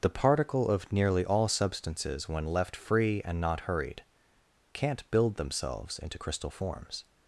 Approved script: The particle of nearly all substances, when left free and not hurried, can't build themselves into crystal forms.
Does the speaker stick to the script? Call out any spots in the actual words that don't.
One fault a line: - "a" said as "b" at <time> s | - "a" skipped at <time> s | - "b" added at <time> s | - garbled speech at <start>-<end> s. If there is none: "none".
none